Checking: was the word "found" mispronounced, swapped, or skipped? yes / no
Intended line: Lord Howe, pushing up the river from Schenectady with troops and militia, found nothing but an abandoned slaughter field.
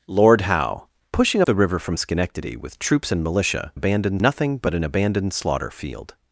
yes